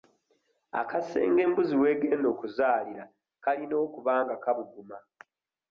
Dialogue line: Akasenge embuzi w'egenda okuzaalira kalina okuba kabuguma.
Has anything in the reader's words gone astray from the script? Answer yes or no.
yes